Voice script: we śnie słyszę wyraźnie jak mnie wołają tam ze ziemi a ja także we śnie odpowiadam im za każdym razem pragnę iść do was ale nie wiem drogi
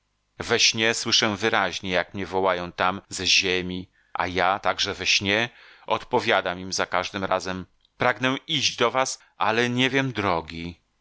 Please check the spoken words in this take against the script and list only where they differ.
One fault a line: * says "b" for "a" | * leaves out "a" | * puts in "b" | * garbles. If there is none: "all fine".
all fine